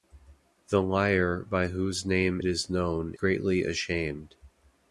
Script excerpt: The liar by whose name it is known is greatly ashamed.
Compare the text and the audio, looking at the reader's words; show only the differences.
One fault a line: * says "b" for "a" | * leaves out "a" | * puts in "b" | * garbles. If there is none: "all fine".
* leaves out "it"
* leaves out "is"